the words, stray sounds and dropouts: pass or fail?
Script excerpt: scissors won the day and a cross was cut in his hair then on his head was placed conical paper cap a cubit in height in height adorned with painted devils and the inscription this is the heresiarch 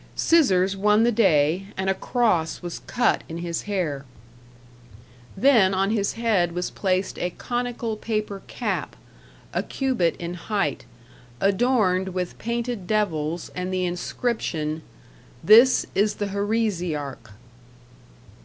fail